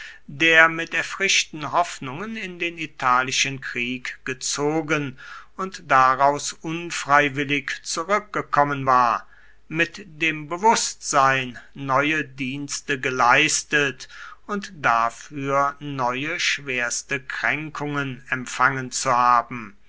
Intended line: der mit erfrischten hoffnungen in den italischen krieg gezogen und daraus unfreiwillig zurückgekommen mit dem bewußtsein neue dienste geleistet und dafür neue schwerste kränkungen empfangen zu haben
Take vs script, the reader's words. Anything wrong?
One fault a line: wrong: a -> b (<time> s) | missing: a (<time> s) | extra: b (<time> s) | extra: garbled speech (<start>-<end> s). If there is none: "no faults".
extra: war (8.9 s)